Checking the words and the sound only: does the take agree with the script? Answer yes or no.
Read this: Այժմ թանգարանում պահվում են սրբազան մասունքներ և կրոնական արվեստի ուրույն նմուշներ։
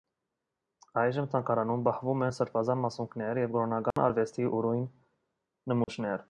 no